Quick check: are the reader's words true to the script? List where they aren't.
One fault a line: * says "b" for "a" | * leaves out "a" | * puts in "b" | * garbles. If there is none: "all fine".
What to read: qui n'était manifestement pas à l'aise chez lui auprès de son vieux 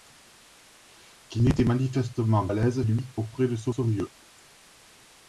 * leaves out "pas"
* leaves out "chez"
* puts in "son"